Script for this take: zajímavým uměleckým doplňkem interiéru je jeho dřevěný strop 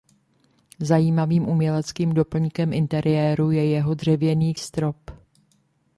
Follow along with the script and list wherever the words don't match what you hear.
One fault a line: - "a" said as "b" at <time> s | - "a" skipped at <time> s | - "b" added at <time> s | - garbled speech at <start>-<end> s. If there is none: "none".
none